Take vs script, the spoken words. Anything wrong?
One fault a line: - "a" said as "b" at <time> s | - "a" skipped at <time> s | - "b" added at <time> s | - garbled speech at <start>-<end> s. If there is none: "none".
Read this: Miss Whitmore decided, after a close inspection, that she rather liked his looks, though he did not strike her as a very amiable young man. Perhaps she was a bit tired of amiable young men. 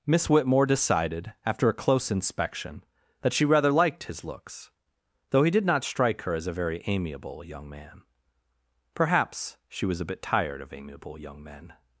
none